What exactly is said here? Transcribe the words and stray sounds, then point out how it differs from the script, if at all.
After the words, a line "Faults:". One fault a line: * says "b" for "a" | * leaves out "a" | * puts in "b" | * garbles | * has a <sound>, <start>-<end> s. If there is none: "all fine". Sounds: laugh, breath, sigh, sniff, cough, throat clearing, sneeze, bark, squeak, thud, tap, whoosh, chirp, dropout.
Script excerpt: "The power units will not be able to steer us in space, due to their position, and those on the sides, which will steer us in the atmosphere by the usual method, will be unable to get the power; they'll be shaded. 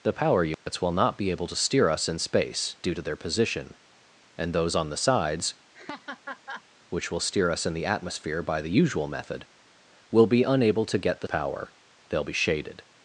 "The power units will not be able to steer us in space, due to their position, and those on the sides, which will steer us in the atmosphere by the usual method, will be unable to get the power; they'll be shaded.
Faults:
* has a dropout, 0.5-0.7 s
* has a laugh, 5.7-6.6 s